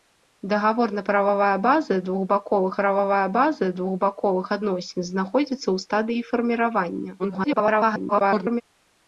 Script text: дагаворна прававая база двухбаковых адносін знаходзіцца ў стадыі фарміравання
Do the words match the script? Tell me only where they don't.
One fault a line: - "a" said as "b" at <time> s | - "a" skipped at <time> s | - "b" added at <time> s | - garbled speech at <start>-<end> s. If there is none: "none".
- "прававая база двухбаковых" added at 2.8 s
- garbled speech at 7.2-8.6 s